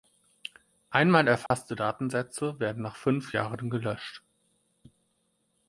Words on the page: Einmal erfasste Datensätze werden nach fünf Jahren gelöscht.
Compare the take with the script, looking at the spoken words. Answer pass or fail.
pass